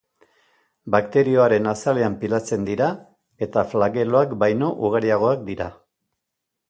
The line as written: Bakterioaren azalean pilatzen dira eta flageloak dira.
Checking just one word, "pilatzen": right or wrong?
right